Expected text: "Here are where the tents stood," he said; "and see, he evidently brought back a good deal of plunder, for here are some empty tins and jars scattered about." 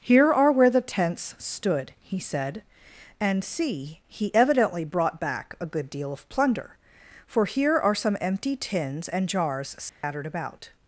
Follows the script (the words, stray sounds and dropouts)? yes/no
no